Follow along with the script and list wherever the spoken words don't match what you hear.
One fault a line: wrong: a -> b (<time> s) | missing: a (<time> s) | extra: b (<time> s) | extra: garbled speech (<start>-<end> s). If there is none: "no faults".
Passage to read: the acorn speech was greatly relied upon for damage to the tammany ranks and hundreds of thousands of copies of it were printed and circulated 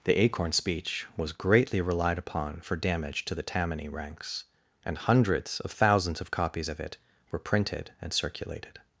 no faults